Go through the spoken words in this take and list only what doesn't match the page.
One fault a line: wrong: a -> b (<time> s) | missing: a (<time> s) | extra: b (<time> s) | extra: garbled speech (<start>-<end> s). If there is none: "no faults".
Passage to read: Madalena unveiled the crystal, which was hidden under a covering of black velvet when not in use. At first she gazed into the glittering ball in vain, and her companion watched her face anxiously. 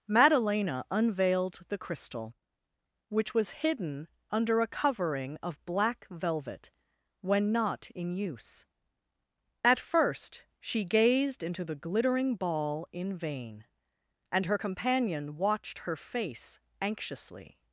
no faults